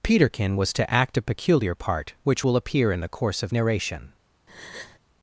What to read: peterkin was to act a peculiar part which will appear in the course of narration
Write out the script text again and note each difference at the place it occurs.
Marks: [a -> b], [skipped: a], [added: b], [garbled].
peterkin was to act a peculiar part which will appear in the course of narration